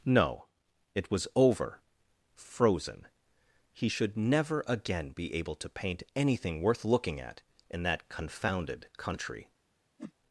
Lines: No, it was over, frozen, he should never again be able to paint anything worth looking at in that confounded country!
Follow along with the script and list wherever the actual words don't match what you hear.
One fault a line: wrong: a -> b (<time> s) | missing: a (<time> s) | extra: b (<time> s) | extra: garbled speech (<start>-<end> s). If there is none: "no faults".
no faults